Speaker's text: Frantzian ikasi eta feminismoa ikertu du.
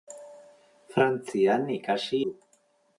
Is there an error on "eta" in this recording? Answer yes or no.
yes